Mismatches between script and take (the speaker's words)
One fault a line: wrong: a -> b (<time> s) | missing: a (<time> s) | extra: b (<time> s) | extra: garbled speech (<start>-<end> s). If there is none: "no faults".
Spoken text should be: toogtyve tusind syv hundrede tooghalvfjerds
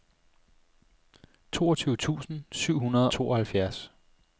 no faults